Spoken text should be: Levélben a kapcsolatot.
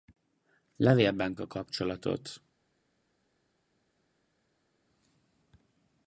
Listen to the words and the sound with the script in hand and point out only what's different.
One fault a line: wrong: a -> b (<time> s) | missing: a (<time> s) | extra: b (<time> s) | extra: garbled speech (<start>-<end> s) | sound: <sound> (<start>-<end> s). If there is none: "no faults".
no faults